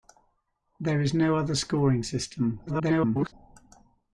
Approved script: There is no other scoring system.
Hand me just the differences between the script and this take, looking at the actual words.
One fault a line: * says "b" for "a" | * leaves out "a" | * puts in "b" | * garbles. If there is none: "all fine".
* garbles